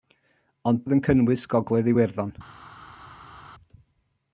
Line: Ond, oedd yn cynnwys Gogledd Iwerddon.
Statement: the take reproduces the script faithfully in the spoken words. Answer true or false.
true